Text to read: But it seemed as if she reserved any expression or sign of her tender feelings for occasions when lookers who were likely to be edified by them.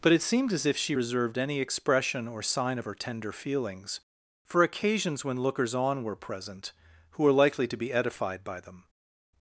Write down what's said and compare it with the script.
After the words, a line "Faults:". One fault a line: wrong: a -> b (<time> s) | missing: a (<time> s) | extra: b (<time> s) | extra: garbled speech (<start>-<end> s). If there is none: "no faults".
But it seemed as if she reserved any expression or sign of her tender feelings for occasions when lookers on were present who were likely to be edified by them.
Faults:
extra: on were present (5.7 s)